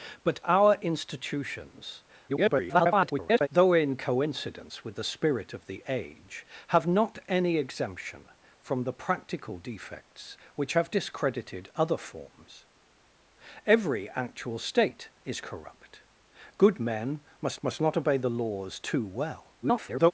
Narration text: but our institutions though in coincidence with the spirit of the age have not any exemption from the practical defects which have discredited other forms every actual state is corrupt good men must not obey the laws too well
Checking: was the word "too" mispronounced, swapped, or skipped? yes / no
no